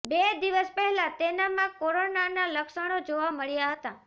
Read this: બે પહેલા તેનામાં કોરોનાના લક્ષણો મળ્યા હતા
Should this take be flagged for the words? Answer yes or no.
yes